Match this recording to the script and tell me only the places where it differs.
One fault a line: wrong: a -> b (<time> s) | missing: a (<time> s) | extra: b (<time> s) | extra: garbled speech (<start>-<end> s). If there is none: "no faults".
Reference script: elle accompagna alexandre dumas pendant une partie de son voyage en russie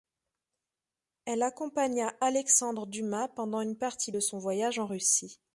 no faults